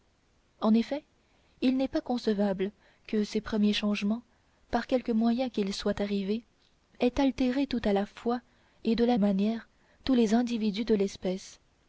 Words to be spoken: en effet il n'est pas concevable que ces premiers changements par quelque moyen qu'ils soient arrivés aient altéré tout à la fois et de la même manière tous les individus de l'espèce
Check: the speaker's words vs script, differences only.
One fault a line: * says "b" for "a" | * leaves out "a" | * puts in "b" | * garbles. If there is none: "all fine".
* leaves out "même"